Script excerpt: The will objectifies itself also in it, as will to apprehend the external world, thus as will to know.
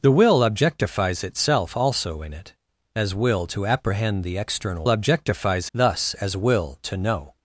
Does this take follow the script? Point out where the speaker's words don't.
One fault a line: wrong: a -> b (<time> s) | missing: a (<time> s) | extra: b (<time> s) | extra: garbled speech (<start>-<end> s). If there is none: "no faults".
wrong: world -> objectifies (4.9 s)